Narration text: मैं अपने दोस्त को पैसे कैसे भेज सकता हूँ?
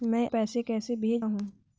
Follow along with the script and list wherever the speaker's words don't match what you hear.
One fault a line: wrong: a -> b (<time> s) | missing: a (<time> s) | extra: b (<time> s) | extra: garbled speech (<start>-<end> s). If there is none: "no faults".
missing: अपने दोस्त को (0.3 s)
missing: सकता (1.2 s)